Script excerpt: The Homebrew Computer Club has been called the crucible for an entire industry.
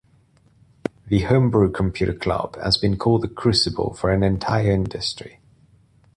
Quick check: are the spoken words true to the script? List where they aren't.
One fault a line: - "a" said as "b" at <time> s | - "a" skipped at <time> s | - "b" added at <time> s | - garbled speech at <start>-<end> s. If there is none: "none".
none